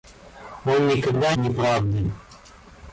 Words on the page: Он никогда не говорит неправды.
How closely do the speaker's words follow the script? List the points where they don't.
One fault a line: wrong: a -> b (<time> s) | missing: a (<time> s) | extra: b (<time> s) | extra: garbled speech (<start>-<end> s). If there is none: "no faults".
missing: не говорит (1.4 s)